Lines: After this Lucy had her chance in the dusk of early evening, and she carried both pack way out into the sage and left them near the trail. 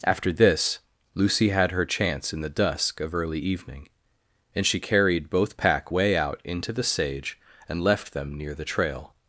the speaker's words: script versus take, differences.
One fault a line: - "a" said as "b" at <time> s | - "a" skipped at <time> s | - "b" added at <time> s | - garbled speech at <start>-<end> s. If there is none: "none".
none